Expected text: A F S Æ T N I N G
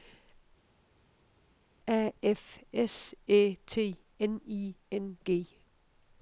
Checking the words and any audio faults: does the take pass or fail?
pass